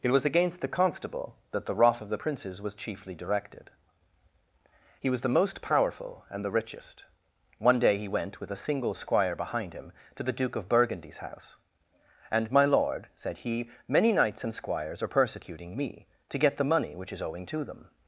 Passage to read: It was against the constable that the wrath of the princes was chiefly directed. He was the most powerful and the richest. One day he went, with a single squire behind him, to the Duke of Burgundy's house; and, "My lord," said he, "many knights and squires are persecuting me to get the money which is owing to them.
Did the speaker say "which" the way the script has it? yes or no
yes